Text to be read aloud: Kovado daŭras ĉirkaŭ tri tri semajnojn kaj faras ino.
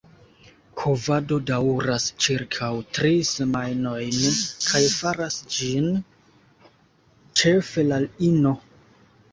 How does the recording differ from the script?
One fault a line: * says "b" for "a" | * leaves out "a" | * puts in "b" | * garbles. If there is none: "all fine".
* leaves out "tri"
* puts in "ĝin ĉefe la"